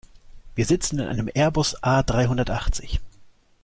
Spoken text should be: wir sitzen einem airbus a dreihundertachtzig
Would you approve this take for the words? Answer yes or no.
no